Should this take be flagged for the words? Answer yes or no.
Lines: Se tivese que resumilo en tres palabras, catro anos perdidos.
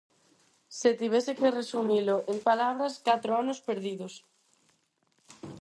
yes